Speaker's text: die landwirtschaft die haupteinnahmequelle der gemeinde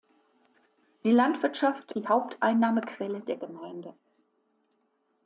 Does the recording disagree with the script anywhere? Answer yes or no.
no